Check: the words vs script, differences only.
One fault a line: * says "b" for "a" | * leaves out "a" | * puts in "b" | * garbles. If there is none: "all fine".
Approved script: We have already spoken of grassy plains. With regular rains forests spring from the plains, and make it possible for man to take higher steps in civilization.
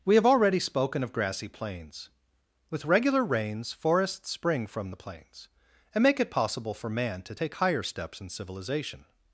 all fine